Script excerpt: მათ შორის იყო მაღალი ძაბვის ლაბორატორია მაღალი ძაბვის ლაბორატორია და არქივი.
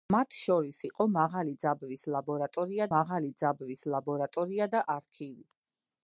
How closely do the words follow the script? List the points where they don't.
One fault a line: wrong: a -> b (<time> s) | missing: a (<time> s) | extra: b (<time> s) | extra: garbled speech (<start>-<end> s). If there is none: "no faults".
no faults